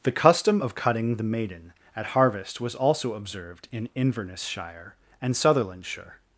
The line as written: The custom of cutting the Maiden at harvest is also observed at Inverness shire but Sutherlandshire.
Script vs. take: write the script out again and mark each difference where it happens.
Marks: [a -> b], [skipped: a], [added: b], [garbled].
The custom of cutting the Maiden at harvest [is -> was] also observed [at -> in] Inverness shire [but -> and] Sutherlandshire.